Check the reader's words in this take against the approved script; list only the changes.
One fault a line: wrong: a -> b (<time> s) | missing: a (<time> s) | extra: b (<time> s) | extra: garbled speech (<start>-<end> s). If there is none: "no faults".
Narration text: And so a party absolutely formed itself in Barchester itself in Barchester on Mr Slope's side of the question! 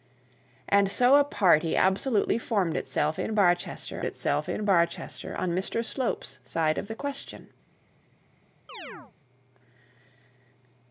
no faults